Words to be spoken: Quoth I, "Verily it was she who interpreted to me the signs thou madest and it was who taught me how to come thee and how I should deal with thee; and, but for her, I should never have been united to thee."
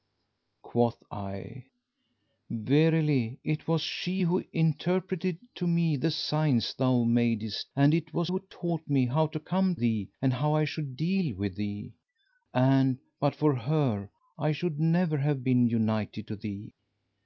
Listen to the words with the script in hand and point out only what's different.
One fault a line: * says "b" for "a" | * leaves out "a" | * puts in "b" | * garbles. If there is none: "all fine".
all fine